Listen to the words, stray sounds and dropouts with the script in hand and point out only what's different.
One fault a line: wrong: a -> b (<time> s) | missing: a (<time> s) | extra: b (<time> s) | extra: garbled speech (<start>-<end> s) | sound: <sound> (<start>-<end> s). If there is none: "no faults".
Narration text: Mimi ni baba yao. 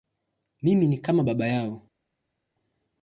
extra: kama (1.0 s)